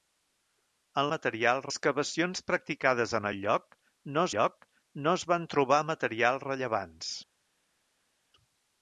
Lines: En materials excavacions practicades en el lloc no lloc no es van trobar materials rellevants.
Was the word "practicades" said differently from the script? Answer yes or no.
no